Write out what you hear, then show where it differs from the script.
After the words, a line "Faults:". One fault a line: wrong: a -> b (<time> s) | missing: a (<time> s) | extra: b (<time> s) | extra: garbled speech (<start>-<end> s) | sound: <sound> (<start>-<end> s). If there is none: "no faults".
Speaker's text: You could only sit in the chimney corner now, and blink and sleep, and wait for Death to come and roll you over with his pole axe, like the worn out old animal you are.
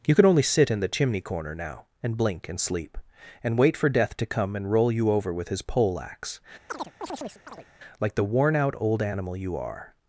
You could only sit in the chimney corner now, and blink and sleep, and wait for Death to come and roll you over with his pole axe, like the worn out old animal you are.
Faults:
sound: chirp (6.7-7.7 s)